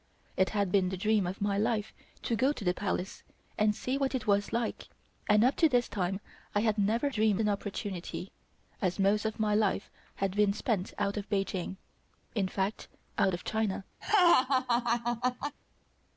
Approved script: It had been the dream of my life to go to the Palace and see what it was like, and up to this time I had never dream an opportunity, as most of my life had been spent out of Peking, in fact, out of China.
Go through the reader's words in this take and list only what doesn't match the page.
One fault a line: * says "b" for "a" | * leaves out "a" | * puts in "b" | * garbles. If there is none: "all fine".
all fine